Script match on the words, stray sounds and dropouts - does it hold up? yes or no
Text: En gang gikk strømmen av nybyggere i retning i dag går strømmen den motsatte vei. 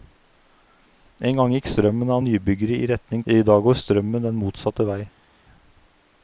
yes